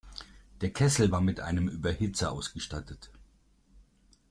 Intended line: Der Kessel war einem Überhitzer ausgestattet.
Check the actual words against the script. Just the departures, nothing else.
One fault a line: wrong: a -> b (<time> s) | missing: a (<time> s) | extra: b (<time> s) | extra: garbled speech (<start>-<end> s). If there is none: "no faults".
extra: mit (1.2 s)